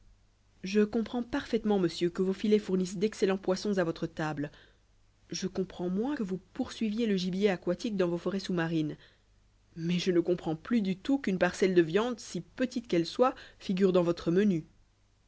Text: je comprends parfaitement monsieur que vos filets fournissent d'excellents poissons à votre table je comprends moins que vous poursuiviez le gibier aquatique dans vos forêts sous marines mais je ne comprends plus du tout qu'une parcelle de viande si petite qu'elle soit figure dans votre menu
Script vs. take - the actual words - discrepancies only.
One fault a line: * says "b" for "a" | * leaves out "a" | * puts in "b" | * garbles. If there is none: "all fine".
all fine